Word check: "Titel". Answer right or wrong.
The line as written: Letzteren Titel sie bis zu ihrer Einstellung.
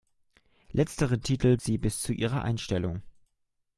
right